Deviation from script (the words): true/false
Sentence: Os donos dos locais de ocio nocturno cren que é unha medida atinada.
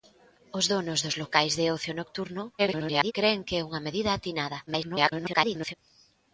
true